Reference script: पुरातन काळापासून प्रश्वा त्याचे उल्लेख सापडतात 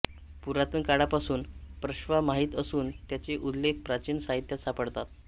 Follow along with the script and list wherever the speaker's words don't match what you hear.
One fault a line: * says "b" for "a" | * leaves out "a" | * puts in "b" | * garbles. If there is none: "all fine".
* puts in "माहीत असून"
* puts in "प्राचीन साहित्यात"